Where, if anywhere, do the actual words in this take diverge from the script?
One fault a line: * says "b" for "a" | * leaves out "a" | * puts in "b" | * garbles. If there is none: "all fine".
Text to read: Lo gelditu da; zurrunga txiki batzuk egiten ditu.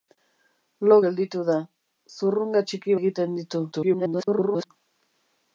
* leaves out "batzuk"
* garbles